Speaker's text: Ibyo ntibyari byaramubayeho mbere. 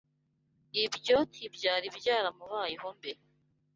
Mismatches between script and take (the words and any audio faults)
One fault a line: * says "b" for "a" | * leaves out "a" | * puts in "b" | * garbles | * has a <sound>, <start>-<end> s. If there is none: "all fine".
all fine